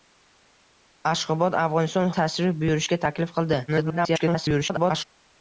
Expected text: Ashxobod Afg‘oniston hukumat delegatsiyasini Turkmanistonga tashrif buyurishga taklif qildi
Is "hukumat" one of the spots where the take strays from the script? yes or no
yes